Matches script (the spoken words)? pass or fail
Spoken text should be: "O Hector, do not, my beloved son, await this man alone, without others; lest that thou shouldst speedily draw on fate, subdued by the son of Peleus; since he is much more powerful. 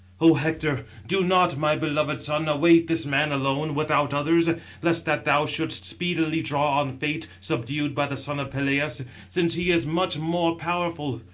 pass